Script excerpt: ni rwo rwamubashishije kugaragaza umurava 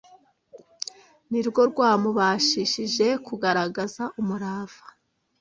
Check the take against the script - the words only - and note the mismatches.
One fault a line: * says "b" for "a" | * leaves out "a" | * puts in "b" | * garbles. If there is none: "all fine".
all fine